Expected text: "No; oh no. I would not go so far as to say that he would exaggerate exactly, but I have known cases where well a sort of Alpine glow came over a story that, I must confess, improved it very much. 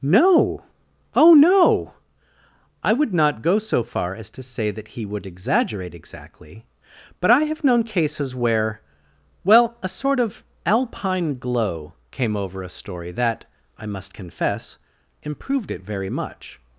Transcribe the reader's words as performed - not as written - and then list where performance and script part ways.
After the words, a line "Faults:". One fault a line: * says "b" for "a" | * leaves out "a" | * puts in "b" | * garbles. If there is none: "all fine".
"No; oh no. I would not go so far as to say that he would exaggerate exactly, but I have known cases where well a sort of Alpine glow came over a story that, I must confess, improved it very much.
Faults:
all fine